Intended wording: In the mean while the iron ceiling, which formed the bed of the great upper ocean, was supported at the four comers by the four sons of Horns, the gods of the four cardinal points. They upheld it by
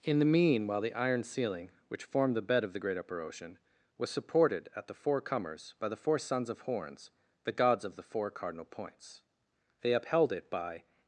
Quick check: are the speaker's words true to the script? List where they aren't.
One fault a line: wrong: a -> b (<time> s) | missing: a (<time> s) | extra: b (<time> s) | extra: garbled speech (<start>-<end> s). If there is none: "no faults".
no faults